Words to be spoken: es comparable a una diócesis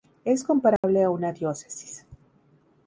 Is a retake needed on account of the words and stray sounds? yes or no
yes